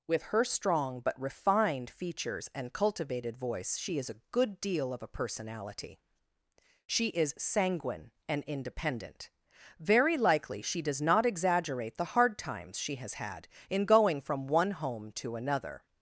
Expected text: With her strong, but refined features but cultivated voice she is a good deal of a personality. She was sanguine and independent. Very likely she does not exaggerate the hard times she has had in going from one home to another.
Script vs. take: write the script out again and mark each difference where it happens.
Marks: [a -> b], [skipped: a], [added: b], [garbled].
With her strong, but refined features [but -> and] cultivated voice she is a good deal of a personality. She [was -> is] sanguine and independent. Very likely she does not exaggerate the hard times she has had in going from one home to another.